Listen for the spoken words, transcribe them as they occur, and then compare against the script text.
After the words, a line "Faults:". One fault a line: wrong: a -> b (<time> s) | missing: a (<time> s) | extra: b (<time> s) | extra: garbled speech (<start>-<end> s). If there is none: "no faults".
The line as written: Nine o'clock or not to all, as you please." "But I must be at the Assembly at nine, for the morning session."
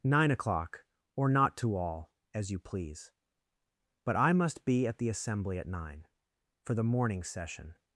Nine o'clock or not to all, as you please." "But I must be at the Assembly at nine, for the morning session."
Faults:
no faults